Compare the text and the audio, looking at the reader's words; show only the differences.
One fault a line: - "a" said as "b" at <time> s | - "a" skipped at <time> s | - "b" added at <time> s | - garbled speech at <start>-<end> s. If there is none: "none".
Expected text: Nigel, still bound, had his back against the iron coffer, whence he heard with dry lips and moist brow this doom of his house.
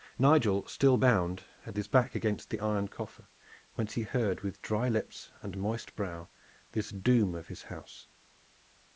none